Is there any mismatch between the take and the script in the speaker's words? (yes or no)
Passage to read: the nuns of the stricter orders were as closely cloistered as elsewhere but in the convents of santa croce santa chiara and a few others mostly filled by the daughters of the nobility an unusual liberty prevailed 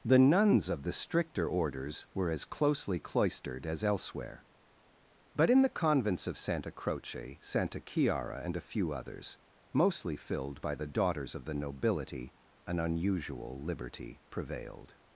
no